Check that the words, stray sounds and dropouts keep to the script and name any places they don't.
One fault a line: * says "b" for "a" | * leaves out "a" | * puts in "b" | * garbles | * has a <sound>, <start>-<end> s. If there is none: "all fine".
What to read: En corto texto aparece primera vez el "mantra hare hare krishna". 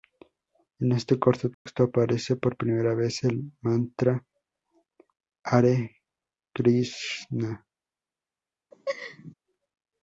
* puts in "este"
* has a dropout, 1.5-1.7 s
* puts in "por"
* leaves out "hare"
* has a laugh, 8.7-9.3 s